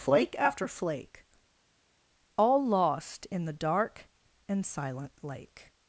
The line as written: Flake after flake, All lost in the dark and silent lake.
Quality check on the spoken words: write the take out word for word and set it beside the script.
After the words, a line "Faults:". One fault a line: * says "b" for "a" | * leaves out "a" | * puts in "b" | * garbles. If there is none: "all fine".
Flake after flake, All lost in the dark and silent lake.
Faults:
all fine